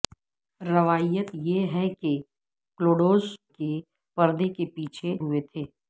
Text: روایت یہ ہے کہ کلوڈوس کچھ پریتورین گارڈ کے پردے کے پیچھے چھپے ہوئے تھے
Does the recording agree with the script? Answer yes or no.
no